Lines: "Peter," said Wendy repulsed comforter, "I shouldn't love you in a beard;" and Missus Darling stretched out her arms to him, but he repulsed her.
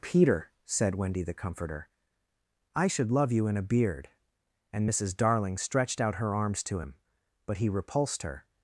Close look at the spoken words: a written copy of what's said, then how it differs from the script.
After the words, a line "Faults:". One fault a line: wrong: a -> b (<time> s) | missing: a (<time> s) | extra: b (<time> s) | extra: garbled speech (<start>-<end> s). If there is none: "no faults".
"Peter," said Wendy the comforter, "I should love you in a beard;" and Missus Darling stretched out her arms to him, but he repulsed her.
Faults:
wrong: repulsed -> the (1.2 s)
wrong: shouldn't -> should (2.9 s)